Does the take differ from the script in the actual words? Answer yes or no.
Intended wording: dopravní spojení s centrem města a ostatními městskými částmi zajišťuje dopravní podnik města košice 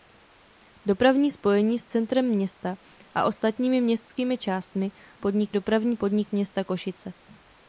yes